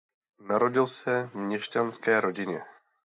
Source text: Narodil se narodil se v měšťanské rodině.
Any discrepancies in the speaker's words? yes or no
yes